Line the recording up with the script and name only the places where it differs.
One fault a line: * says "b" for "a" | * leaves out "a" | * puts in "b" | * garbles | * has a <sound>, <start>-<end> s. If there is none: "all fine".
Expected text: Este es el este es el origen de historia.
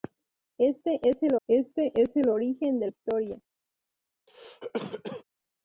* has a cough, 4.3-5.2 s